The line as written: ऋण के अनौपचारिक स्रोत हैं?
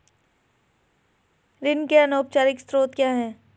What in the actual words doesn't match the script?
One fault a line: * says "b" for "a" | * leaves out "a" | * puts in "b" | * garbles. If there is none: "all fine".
* puts in "क्या"